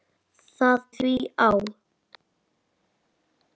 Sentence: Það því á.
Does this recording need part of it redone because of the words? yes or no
no